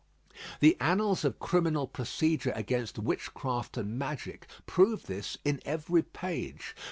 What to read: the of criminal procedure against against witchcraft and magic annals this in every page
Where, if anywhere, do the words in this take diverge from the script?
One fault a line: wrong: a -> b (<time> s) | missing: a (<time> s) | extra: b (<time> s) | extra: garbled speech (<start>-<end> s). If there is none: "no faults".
extra: annals (0.8 s)
missing: against (3.0 s)
wrong: annals -> prove (4.6 s)